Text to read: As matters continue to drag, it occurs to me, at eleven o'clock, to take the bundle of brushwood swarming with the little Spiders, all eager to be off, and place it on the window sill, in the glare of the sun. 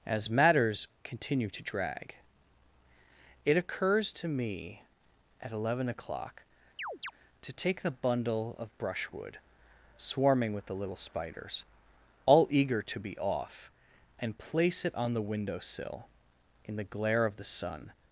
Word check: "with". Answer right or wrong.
right